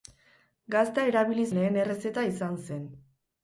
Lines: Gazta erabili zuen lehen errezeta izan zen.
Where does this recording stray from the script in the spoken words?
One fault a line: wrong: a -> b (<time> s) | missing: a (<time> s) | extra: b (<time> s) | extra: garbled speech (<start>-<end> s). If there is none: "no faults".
missing: zuen (1.4 s)